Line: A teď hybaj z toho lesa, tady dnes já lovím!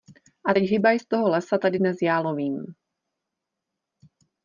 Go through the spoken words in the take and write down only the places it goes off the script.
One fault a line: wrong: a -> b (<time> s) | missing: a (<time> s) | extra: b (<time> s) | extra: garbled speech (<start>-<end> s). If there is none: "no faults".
no faults